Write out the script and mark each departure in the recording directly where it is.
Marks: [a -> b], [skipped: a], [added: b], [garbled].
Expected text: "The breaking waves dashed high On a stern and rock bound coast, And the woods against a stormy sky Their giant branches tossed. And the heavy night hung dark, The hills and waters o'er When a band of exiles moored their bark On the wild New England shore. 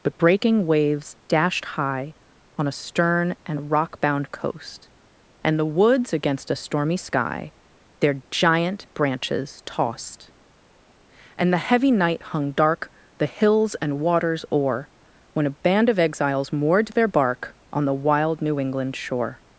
["The -> But] breaking waves dashed high On a stern and rock bound coast, And the woods against a stormy sky Their giant branches tossed. And the heavy night hung dark, The hills and waters o'er When a band of exiles moored their bark On the wild New England shore.